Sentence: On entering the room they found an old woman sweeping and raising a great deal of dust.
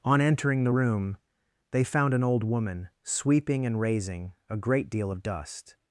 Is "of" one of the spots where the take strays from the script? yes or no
no